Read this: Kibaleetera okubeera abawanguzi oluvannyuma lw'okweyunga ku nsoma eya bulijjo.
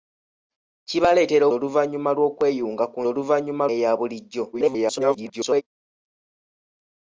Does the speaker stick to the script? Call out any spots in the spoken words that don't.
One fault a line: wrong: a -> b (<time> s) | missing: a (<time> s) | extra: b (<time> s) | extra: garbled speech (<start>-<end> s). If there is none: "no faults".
missing: okubeera abawanguzi (1.4 s)
wrong: nsoma -> oluvannyuma (3.1 s)
extra: garbled speech (4.5-5.6 s)